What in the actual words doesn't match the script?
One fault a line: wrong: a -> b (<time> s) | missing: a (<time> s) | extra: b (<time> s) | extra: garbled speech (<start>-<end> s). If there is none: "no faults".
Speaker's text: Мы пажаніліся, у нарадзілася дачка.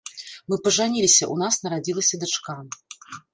extra: нас (1.4 s)